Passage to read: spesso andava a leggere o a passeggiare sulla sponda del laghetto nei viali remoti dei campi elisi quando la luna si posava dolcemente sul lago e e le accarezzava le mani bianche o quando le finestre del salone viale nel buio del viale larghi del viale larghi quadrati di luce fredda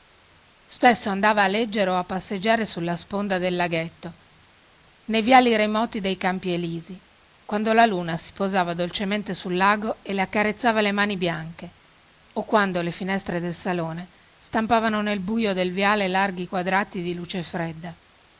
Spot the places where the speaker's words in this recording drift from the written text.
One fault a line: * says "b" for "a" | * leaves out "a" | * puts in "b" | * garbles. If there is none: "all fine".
* leaves out "e"
* says "stampavano" for "viale"
* leaves out "del viale larghi"